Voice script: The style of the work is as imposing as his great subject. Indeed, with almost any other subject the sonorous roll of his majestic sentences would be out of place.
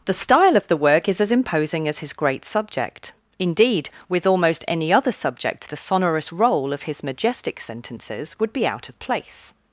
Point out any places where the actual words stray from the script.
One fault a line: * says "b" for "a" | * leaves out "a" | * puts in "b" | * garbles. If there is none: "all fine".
all fine